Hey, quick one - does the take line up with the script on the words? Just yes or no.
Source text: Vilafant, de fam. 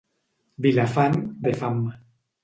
yes